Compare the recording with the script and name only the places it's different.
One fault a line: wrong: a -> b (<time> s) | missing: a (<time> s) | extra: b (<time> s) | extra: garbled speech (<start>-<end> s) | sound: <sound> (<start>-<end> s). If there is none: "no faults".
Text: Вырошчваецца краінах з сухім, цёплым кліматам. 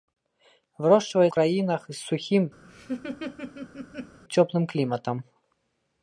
sound: laugh (2.6-4.2 s)